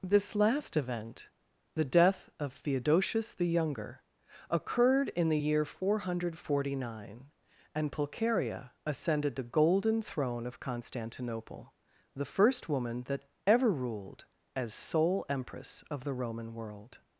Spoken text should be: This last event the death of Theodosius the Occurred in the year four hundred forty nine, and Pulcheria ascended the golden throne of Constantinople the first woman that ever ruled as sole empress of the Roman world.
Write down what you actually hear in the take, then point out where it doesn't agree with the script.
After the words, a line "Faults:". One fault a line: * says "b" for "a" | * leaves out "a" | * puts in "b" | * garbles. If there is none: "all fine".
This last event the death of Theodosius the Younger occurred in the year four hundred forty nine, and Pulcheria ascended the golden throne of Constantinople the first woman that ever ruled as sole empress of the Roman world.
Faults:
* puts in "Younger"